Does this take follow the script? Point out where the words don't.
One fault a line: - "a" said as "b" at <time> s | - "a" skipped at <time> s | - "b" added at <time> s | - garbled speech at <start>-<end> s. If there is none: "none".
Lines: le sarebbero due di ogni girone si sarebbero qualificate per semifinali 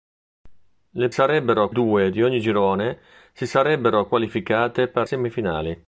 none